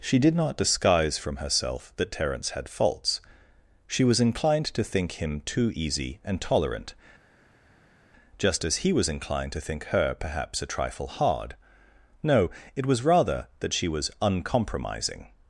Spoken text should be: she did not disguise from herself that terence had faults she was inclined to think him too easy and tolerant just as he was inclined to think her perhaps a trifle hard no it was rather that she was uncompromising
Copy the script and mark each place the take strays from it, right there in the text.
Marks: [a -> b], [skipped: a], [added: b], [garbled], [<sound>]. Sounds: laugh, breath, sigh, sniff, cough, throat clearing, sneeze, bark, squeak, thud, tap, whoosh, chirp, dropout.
she did not disguise from herself that terence had faults she was inclined to think him too easy and tolerant just as he was inclined to think her perhaps a trifle hard no it was rather that she was uncompromising